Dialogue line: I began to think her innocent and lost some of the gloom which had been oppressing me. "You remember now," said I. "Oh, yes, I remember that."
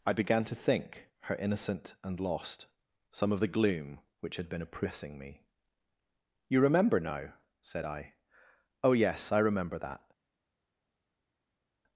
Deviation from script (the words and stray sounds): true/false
false